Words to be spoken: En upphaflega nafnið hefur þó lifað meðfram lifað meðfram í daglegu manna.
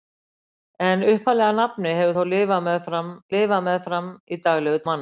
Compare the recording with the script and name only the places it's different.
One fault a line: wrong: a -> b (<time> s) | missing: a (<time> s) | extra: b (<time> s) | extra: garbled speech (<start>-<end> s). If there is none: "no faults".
no faults